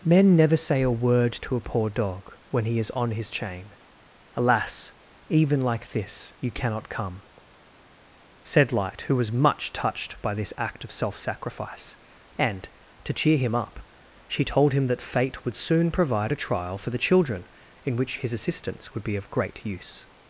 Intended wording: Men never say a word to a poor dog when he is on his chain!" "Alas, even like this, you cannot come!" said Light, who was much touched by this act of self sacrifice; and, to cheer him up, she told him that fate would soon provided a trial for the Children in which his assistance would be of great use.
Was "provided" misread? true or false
true